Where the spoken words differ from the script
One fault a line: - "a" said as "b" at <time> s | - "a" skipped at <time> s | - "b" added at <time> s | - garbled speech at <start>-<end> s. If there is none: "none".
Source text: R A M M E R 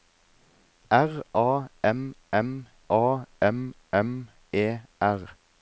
- "A M M" added at 2.9 s